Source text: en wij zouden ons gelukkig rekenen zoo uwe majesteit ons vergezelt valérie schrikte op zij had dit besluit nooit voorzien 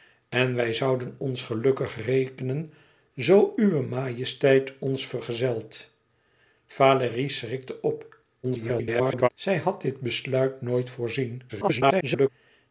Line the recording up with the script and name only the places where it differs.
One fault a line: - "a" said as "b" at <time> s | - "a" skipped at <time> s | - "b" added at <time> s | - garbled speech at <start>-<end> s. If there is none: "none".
- garbled speech at 8.4-9.3 s
- garbled speech at 11.5-12.3 s